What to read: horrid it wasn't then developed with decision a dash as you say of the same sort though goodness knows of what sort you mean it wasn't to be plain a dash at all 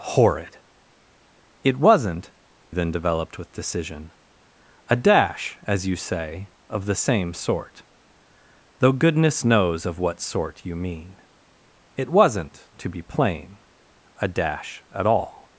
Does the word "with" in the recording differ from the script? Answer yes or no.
no